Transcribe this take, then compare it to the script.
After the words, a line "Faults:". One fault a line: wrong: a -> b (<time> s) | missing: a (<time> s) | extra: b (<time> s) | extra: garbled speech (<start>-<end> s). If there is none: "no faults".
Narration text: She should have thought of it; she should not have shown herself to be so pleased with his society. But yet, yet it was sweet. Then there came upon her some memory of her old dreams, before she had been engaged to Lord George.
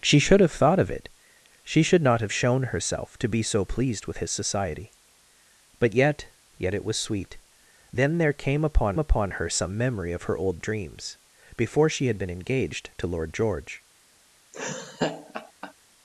She should have thought of it; she should not have shown herself to be so pleased with his society. But yet, yet it was sweet. Then there came upon upon her some memory of her old dreams, before she had been engaged to Lord George.
Faults:
extra: upon (9.0 s)